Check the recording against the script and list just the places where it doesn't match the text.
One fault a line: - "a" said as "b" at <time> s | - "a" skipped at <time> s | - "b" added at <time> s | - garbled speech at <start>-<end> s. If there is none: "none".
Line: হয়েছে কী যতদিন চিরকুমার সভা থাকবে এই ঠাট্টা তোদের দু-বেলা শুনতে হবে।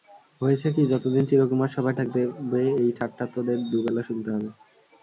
none